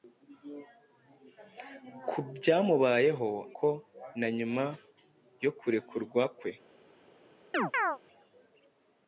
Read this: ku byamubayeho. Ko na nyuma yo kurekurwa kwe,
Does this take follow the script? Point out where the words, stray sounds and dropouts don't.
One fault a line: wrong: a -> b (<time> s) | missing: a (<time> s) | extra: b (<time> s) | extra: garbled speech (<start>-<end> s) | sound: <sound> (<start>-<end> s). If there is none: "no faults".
sound: chirp (7.5-8.0 s)